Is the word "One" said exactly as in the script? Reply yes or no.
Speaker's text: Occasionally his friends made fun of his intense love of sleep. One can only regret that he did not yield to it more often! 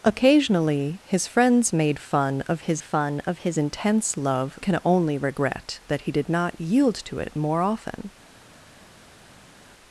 no